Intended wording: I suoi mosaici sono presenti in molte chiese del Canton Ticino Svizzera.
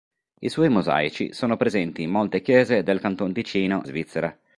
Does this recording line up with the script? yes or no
yes